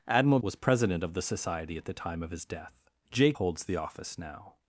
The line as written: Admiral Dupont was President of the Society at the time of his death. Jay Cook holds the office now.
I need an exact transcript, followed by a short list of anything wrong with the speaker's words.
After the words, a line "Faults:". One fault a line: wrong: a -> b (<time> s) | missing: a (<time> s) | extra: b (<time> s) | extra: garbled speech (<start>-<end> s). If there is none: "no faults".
Admiral Was President of the Society at the time of his death. Jay Holds the office now.
Faults:
missing: Dupont (0.4 s)
missing: Cook (3.3 s)